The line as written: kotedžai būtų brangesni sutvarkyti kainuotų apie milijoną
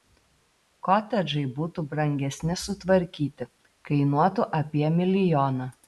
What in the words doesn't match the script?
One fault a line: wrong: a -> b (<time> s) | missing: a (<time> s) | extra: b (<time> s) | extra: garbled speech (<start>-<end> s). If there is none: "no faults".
no faults